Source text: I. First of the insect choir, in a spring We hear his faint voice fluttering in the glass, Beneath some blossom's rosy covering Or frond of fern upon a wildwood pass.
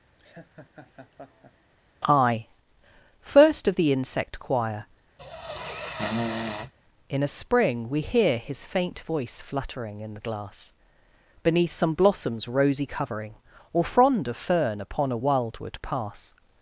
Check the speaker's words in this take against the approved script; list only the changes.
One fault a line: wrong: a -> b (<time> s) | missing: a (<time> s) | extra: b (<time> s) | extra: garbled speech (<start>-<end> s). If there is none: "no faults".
no faults